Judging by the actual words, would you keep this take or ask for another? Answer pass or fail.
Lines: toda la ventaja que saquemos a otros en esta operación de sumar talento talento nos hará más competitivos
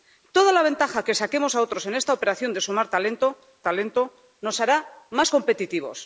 pass